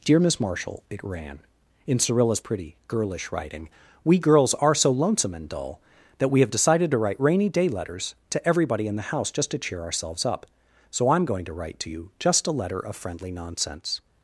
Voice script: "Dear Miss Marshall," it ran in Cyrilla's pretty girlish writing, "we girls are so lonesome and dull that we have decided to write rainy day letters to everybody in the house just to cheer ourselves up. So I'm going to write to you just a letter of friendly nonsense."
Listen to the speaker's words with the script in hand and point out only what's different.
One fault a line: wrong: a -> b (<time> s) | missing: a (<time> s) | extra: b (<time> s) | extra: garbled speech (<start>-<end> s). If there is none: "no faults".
no faults